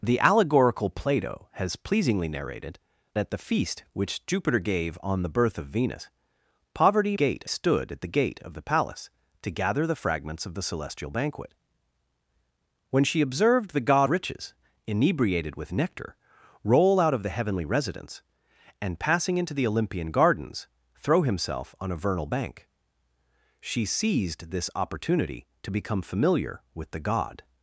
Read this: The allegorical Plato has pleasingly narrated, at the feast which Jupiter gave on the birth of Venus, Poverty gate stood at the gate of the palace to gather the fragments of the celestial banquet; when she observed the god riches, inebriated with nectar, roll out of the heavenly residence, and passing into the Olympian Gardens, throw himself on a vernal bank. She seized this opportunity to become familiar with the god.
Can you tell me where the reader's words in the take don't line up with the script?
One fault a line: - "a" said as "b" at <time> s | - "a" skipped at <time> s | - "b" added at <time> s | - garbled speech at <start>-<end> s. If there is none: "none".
none